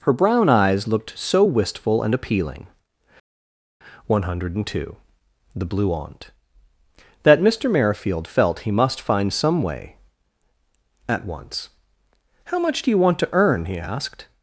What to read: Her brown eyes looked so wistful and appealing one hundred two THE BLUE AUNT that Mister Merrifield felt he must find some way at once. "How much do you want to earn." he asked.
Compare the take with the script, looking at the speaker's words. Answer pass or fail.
pass